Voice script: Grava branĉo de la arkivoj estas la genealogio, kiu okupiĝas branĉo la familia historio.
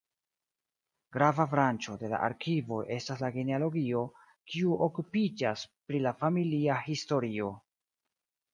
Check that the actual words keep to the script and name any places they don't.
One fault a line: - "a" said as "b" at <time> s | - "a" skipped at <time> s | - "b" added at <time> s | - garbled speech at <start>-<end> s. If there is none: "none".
- "branĉo" said as "pri" at 5.9 s